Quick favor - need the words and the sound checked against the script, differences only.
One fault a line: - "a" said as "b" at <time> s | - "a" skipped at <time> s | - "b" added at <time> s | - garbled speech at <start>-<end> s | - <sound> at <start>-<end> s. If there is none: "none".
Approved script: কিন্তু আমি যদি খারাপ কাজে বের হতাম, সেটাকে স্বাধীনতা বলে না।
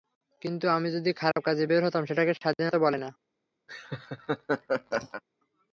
- dropout at 1.3-1.4 s
- laugh at 3.7-5.2 s